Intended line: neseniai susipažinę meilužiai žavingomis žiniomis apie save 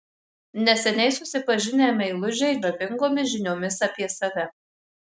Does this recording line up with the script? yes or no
yes